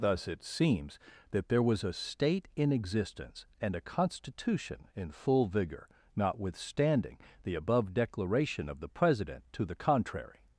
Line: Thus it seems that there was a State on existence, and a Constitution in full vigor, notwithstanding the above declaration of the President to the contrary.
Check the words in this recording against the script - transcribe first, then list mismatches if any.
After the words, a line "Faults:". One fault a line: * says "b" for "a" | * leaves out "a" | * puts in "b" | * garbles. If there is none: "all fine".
Thus it seems that there was a State in existence, and a Constitution in full vigor, notwithstanding the above declaration of the President to the contrary.
Faults:
* says "in" for "on"